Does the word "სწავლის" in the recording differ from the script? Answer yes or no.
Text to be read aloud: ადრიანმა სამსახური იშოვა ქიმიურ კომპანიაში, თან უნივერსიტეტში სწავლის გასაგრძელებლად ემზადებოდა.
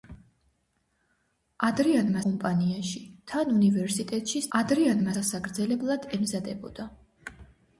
yes